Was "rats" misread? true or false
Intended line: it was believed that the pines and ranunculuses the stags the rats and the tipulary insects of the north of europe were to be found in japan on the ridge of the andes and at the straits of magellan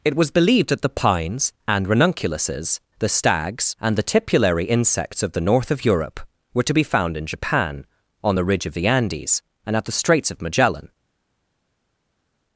true